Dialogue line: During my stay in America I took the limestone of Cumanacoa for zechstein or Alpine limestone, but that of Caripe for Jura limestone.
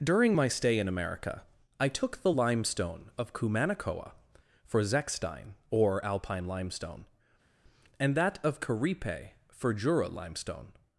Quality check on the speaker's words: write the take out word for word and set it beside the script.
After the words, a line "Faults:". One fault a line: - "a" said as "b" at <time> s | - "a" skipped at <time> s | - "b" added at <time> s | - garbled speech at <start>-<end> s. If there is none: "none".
During my stay in America I took the limestone of Cumanacoa for zechstein or Alpine limestone, and that of Caripe for Jura limestone.
Faults:
- "but" said as "and" at 8.0 s